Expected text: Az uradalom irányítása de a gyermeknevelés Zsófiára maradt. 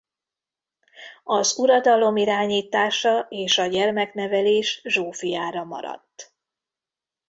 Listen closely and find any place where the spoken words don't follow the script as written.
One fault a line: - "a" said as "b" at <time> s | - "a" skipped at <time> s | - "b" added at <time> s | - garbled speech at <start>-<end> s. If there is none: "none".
- "de" said as "és" at 3.3 s